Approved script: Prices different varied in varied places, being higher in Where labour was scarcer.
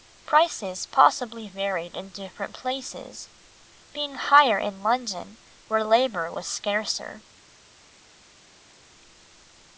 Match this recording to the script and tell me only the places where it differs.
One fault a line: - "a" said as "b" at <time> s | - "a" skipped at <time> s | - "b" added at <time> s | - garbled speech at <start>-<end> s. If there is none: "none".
- "different" said as "possibly" at 0.9 s
- "varied" said as "different" at 2.1 s
- "London" added at 4.8 s